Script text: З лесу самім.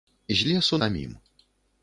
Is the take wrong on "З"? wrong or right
right